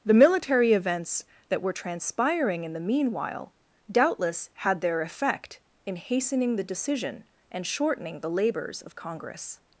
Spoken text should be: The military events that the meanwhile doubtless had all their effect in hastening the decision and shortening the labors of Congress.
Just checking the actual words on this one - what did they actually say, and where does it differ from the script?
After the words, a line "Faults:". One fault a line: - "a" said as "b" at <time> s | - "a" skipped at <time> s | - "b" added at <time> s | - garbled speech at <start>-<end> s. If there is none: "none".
The military events that were transpiring in the meanwhile doubtless had their effect in hastening the decision and shortening the labors of Congress.
Faults:
- "were transpiring in" added at 1.6 s
- "all" skipped at 4.8 s